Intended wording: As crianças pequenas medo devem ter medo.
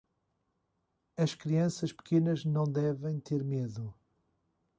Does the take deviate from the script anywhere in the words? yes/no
yes